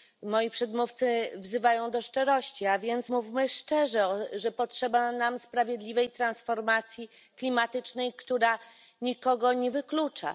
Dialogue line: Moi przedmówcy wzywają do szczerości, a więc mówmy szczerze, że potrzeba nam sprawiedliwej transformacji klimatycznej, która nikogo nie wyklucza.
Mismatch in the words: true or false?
false